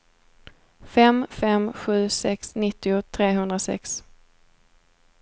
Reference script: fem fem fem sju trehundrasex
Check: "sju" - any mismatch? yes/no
yes